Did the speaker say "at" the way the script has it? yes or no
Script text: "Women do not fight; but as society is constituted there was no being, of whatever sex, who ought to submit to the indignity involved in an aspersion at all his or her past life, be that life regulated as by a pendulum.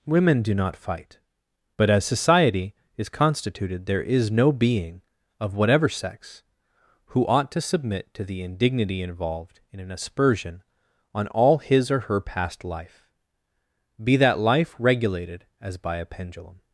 no